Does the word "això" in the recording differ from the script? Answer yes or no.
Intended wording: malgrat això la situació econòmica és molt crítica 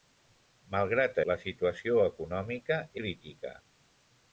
yes